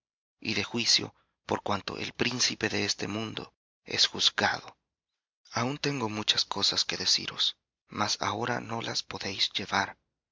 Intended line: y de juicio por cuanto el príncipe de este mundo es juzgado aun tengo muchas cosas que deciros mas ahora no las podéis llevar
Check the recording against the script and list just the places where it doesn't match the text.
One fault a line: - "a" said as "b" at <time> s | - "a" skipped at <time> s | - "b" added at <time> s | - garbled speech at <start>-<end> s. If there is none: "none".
none